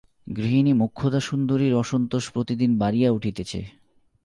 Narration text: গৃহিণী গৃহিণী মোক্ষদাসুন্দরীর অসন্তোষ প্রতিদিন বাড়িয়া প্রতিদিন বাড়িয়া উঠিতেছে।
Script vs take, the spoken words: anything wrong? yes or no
yes